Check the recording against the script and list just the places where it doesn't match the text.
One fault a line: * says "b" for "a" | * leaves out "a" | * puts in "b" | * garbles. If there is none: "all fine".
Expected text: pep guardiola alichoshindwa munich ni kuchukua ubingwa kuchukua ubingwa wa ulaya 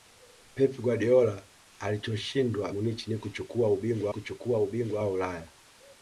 all fine